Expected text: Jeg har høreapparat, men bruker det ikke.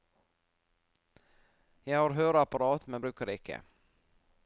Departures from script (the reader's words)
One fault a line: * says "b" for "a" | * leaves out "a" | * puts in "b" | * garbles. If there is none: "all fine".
all fine